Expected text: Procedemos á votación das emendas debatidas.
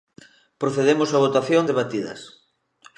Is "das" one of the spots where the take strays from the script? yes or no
yes